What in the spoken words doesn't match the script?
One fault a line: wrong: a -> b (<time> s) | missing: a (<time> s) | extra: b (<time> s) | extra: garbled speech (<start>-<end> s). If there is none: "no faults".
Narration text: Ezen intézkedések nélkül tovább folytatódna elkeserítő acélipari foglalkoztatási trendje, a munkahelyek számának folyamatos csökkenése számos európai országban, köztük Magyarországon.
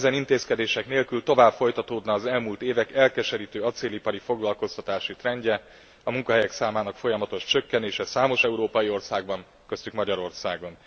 extra: az elmúlt évek (2.1 s)